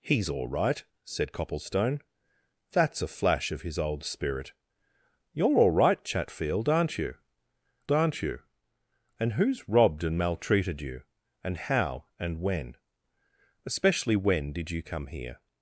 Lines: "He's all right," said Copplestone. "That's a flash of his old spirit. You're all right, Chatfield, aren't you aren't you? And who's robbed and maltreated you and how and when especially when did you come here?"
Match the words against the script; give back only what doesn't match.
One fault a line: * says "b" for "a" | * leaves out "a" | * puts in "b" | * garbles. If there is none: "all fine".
all fine